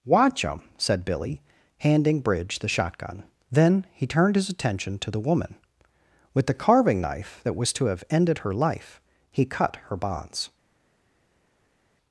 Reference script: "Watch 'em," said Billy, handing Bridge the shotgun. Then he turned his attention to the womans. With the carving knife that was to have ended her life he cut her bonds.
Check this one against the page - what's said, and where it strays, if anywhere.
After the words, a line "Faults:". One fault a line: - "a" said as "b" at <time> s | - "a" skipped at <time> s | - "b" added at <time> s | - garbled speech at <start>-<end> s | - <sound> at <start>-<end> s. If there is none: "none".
"Watch 'em," said Billy, handing Bridge the shotgun. Then he turned his attention to the woman. With the carving knife that was to have ended her life he cut her bonds.
Faults:
- "womans" said as "woman" at 5.2 s